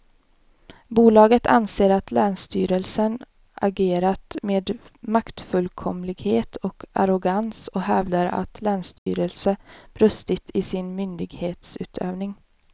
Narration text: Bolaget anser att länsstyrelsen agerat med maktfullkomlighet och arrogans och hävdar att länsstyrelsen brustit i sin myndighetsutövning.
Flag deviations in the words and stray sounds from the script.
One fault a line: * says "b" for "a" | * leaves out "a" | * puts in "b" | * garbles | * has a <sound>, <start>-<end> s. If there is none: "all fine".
* has a dropout, 9.0-9.1 s